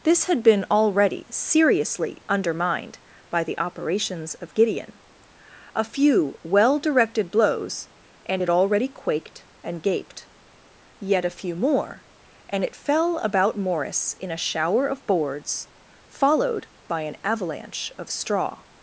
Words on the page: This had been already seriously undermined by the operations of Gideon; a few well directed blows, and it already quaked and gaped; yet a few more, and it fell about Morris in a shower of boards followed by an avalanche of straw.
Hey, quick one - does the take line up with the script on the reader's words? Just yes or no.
yes